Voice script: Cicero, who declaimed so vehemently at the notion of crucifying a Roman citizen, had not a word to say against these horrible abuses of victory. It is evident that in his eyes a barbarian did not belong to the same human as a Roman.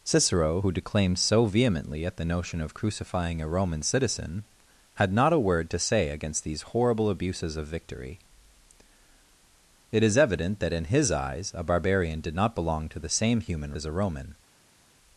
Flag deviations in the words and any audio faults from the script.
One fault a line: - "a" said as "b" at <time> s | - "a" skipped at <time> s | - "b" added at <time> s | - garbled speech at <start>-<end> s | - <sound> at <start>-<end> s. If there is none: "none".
none